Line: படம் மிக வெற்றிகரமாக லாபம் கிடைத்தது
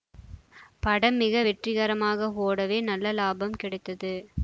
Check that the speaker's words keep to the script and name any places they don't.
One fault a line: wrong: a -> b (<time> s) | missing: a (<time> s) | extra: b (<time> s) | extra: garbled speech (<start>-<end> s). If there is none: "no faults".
extra: ஓடவே நல்ல (2.4 s)